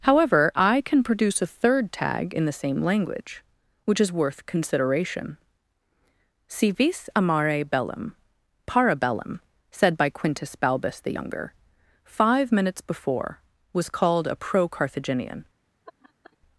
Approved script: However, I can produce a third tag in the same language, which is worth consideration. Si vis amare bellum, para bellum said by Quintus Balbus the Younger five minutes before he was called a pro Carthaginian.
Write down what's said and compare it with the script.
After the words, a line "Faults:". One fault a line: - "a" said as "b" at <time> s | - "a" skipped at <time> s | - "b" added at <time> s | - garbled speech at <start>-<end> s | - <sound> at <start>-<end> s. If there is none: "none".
However, I can produce a third tag in the same language, which is worth consideration. Si vis amare bellum, para bellum said by Quintus Balbus the Younger five minutes before was called a pro Carthaginian.
Faults:
- "he" skipped at 13.4 s
- laugh at 15.9-16.4 s